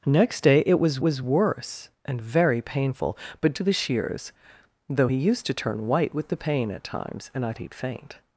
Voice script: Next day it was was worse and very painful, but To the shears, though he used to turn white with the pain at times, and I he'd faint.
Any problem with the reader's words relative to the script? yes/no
no